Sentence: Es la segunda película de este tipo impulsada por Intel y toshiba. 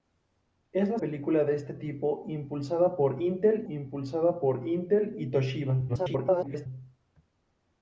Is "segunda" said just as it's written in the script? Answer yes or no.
no